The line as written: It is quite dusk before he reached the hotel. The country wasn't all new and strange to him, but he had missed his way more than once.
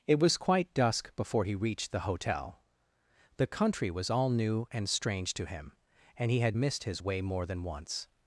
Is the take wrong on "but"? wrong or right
wrong